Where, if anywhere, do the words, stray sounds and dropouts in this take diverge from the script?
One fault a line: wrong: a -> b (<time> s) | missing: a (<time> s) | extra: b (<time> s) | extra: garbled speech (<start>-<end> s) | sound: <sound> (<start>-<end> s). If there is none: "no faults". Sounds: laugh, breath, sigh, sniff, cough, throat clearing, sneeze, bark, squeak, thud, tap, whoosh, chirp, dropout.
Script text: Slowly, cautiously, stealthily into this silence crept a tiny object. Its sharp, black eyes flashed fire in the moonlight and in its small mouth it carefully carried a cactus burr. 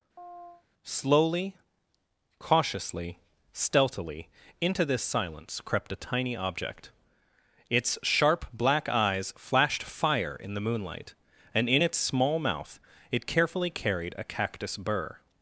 sound: chirp (0.2-0.6 s)